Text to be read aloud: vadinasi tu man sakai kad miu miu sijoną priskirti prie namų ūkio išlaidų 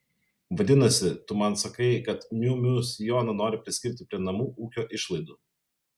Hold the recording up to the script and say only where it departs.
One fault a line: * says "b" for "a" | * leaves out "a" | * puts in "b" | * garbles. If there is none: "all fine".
* puts in "nori"